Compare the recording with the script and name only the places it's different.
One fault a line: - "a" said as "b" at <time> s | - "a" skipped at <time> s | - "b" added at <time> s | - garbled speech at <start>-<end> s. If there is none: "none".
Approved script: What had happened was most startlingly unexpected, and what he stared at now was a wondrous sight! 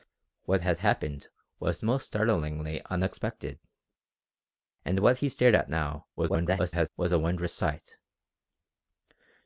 - garbled speech at 6.2-6.9 s